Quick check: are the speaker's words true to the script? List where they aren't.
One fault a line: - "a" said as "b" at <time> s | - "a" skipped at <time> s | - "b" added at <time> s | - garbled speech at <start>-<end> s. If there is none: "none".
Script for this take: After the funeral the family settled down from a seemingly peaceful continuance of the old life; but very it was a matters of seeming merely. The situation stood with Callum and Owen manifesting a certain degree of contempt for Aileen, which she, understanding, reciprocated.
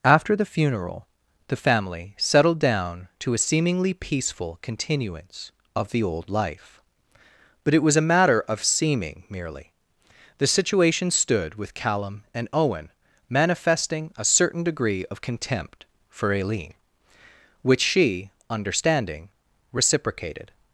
- "from" said as "to" at 3.2 s
- "very" skipped at 7.7 s
- "matters" said as "matter" at 8.1 s